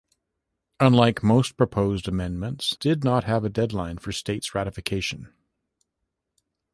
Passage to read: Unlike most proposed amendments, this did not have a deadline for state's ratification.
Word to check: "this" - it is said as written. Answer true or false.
false